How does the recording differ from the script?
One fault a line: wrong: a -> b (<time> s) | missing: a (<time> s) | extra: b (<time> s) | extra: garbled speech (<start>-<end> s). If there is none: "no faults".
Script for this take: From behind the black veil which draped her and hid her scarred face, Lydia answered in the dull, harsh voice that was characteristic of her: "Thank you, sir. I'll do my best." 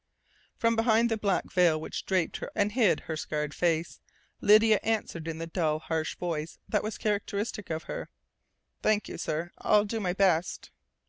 no faults